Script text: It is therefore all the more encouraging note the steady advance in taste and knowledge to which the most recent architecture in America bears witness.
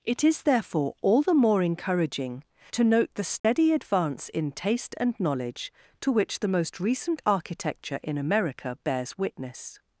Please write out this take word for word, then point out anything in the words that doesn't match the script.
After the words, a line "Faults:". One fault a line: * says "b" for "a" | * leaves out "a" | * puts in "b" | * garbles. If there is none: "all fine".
It is therefore all the more encouraging to note the steady advance in taste and knowledge to which the most recent architecture in America bears witness.
Faults:
* puts in "to"